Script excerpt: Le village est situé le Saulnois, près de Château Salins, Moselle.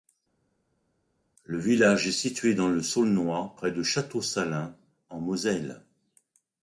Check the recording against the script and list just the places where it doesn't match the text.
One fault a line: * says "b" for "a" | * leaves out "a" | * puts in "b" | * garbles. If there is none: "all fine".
* puts in "dans"
* puts in "en"